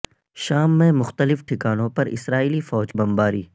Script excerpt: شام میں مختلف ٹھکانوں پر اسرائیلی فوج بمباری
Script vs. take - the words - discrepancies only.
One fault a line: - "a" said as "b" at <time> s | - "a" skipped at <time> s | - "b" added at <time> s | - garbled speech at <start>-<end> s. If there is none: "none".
none